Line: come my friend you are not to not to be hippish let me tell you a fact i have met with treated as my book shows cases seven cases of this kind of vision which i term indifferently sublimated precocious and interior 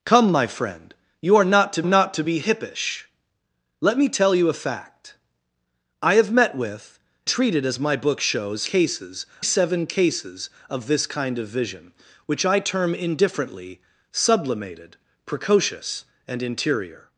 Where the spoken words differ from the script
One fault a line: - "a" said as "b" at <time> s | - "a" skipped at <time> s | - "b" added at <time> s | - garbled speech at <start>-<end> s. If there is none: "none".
none